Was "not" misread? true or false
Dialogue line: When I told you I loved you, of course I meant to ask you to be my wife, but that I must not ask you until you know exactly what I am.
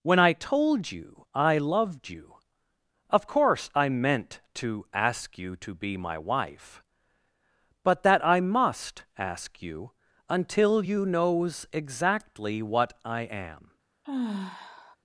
true